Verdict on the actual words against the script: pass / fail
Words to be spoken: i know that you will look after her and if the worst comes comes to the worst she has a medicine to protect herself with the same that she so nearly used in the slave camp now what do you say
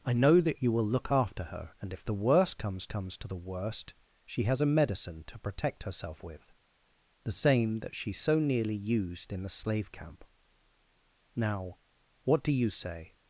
pass